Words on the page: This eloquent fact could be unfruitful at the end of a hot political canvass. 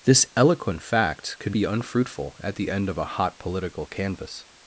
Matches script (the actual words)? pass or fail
pass